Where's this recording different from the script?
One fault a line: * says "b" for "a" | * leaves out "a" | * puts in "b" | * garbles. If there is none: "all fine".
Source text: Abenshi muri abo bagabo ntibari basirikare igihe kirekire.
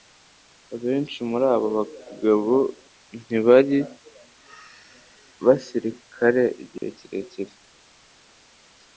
all fine